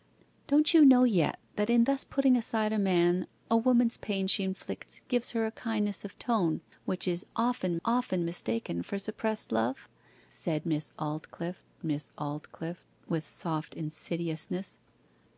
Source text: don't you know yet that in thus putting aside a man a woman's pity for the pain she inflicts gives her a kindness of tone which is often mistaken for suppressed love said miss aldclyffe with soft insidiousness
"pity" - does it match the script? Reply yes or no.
no